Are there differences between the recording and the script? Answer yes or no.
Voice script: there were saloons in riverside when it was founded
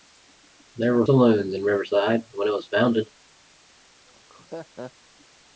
no